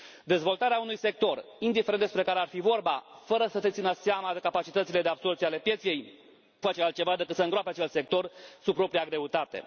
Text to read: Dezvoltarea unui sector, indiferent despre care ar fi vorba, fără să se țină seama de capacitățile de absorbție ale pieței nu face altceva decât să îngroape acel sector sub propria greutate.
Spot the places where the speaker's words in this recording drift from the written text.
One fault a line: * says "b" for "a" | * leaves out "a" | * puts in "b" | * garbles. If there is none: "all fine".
* leaves out "nu"